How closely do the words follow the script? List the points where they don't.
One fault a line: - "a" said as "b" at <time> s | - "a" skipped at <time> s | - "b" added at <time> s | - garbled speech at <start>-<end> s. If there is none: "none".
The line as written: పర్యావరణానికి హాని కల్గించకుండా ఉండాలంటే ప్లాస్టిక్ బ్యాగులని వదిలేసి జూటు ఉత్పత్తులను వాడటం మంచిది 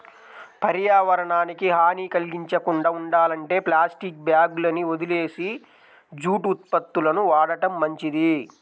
none